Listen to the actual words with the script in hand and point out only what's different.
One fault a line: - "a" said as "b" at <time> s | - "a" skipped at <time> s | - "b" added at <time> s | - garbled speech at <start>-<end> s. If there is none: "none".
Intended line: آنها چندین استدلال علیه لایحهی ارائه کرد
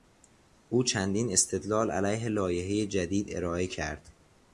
- "آنها" said as "او" at 0.7 s
- "جدید" added at 2.9 s